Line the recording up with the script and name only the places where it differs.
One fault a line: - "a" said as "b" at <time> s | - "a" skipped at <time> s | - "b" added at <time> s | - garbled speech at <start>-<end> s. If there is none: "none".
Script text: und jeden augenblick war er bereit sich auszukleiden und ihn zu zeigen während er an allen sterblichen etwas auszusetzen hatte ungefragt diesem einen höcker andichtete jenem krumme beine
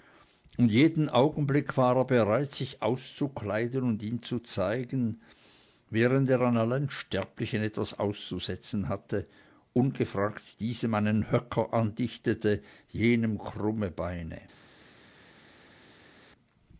none